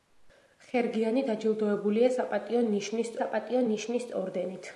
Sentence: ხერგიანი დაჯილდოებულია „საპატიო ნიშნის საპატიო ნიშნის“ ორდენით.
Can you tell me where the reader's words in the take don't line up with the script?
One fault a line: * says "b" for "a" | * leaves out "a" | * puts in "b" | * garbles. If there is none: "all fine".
all fine